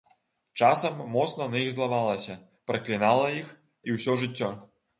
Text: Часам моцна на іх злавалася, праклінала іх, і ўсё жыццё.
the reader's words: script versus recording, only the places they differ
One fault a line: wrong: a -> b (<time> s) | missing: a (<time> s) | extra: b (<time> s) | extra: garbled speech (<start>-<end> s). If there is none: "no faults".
no faults